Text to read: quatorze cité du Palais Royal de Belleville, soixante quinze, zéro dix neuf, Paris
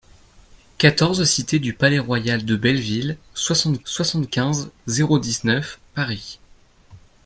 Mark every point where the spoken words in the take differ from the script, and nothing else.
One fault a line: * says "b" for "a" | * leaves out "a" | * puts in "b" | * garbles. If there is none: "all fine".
* puts in "soixante"